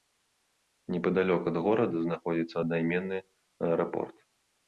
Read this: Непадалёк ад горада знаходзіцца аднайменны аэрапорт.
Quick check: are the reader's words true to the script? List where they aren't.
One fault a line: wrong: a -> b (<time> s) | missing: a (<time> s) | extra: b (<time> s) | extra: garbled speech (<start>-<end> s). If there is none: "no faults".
no faults